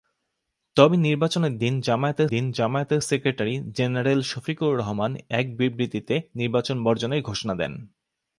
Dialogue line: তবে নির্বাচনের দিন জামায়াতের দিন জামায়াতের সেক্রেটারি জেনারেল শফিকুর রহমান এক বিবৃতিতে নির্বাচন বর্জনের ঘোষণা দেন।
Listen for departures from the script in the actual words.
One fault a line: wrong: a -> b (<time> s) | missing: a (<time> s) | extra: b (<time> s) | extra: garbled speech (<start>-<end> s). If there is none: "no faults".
no faults